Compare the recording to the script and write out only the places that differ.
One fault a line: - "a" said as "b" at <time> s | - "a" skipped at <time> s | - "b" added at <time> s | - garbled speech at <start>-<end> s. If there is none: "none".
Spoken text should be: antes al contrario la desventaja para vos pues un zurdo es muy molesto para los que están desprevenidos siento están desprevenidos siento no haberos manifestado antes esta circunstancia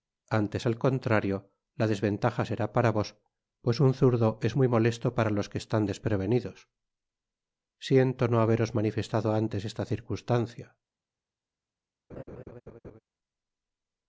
- "será" added at 2.5 s
- "están desprevenidos siento" skipped at 8.3 s